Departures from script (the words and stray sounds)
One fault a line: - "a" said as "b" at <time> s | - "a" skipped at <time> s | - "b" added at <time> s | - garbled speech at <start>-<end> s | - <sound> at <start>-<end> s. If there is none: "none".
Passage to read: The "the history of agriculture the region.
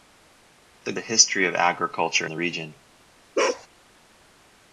- bark at 3.3-3.7 s